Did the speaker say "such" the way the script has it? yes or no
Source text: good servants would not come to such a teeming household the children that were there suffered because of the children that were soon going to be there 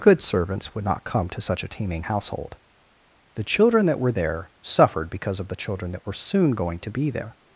yes